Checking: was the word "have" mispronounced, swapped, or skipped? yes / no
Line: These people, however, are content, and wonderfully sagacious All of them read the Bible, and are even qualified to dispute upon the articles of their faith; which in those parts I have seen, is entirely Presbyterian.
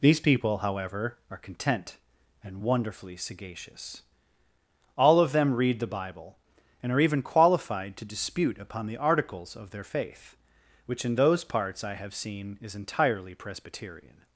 no